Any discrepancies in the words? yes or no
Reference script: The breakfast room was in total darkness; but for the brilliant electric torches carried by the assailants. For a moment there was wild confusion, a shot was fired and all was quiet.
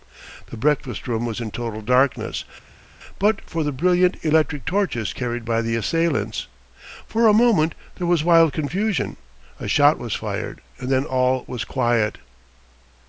yes